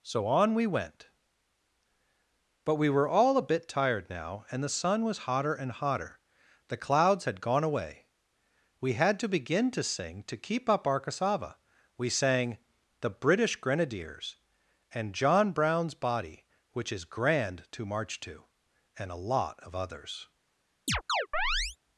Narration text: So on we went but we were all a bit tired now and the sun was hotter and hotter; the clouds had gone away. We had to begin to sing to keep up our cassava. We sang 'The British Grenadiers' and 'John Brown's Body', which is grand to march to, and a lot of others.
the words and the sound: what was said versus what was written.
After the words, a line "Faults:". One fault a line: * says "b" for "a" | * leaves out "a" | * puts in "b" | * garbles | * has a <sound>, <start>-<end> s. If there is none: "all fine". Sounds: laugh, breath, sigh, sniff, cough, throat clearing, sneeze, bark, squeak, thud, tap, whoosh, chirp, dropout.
So on we went but we were all a bit tired now and the sun was hotter and hotter; the clouds had gone away. We had to begin to sing to keep up our cassava. We sang 'The British Grenadiers' and 'John Brown's Body', which is grand to march to, and a lot of others.
Faults:
* has a chirp, 20.9-21.8 s